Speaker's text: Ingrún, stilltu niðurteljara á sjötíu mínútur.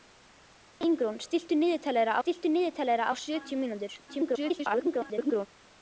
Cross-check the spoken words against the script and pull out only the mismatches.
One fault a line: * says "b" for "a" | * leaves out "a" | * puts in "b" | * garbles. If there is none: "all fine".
* puts in "stilltu niðurteljara"
* garbles